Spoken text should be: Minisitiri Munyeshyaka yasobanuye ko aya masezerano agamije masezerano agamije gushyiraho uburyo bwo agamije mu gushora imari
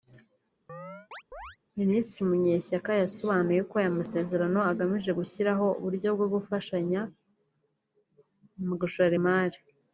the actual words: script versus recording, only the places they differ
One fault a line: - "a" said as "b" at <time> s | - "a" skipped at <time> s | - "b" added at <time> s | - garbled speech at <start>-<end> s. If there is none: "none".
- "masezerano agamije" skipped at 5.1 s
- "agamije" said as "gufashanya" at 6.3 s